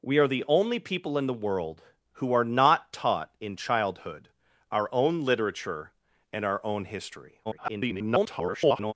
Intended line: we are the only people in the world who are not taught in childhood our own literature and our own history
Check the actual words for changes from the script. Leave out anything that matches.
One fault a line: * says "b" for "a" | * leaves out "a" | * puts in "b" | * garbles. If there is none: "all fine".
* garbles